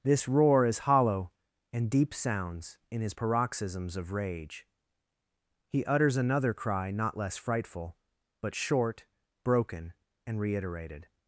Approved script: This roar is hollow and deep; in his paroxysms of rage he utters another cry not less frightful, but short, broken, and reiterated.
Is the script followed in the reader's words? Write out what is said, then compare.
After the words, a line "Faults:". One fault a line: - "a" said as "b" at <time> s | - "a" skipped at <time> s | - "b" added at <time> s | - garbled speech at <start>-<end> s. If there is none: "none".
This roar is hollow and deep; sounds in his paroxysms of rage he utters another cry not less frightful, but short, broken, and reiterated.
Faults:
- "sounds" added at 2.1 s